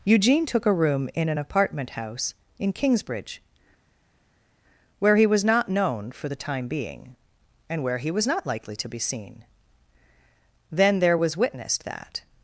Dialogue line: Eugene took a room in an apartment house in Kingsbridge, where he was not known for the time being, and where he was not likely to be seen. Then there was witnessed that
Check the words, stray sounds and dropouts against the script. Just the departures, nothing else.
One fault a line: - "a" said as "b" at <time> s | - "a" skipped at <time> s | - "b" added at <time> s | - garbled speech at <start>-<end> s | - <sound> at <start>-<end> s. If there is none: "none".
none